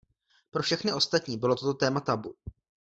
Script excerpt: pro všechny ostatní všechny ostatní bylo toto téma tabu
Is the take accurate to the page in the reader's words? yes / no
no